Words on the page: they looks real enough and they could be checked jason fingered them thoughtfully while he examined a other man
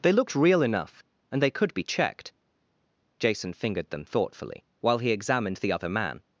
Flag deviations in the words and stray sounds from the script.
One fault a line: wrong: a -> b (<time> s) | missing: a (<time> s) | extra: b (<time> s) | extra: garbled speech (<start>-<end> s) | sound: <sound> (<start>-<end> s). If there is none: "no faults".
wrong: looks -> looked (0.1 s)
wrong: a -> the (5.6 s)